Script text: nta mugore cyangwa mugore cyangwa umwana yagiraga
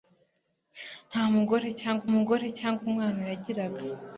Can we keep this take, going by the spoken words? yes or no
yes